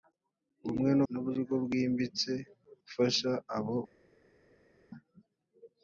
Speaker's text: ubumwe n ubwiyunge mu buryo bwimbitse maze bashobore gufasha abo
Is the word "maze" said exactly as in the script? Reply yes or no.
no